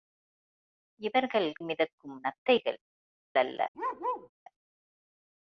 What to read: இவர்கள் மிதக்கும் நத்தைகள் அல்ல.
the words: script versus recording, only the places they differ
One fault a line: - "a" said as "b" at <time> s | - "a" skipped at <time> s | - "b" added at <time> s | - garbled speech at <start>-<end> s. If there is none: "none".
none